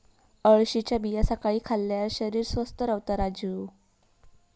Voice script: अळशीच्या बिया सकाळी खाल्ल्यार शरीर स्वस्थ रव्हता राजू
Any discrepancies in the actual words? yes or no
no